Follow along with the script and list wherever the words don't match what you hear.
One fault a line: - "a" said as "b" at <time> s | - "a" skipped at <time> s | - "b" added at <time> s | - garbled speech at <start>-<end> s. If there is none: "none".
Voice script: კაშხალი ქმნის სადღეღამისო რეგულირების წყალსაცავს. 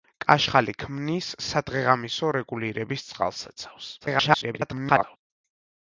- garbled speech at 4.0-5.2 s